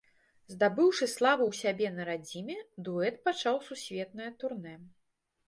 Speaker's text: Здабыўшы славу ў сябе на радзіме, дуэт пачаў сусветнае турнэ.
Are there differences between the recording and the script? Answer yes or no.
no